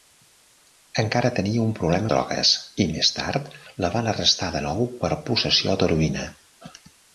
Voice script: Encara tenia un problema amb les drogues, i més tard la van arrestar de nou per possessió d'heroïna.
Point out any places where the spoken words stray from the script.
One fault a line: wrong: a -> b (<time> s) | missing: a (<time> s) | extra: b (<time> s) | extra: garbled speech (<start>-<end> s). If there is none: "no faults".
missing: amb les (2.1 s)